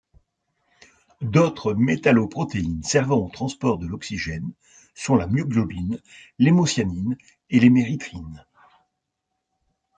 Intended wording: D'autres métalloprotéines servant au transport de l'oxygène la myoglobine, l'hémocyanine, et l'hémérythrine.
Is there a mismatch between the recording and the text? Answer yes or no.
yes